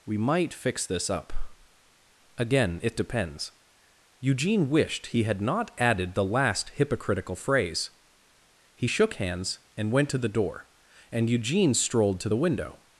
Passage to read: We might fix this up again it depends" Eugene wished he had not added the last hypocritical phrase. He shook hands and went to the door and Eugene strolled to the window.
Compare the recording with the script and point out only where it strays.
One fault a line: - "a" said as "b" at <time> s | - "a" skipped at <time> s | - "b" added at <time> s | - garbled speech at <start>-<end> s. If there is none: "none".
none